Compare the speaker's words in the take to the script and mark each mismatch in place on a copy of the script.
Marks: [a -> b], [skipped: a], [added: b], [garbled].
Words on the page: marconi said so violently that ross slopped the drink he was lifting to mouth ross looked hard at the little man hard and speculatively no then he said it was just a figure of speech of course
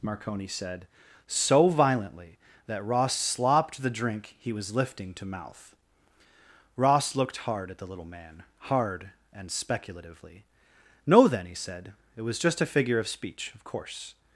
marconi said so violently that ross slopped the drink he was lifting to mouth ross looked hard at the little man hard and speculatively no then he said it was just a figure of speech of course